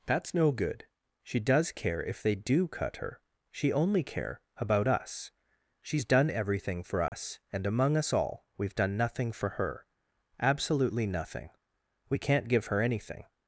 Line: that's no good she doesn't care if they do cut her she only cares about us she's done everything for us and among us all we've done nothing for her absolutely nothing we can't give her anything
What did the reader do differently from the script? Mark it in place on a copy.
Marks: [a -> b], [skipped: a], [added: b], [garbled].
that's no good she [doesn't -> does] care if they do cut her she only [cares -> care] about us she's done everything for us and among us all we've done nothing for her absolutely nothing we can't give her anything